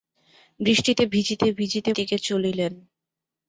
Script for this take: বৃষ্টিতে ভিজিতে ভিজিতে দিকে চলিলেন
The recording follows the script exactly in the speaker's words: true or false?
true